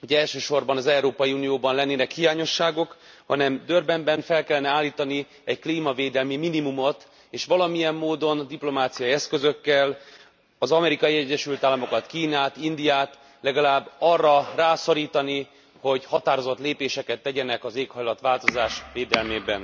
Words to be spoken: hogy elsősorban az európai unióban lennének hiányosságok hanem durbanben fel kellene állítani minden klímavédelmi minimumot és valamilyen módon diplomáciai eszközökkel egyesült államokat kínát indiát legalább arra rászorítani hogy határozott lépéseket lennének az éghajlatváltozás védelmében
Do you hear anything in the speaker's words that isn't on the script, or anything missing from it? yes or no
yes